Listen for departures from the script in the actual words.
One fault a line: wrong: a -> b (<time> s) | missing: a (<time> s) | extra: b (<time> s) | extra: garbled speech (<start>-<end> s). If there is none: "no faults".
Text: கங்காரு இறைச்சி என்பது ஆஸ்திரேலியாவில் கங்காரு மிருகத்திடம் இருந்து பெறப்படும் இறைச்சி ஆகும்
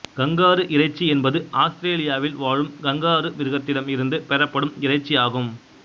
extra: வாழும் (2.4 s)